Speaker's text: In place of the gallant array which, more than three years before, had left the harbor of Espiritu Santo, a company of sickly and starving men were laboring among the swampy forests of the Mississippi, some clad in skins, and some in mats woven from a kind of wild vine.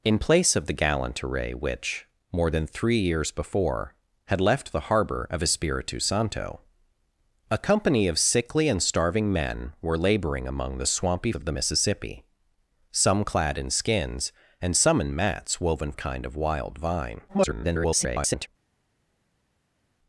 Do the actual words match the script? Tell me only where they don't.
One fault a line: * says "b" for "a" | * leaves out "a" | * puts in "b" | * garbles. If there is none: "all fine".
* leaves out "forests"
* leaves out "from"
* garbles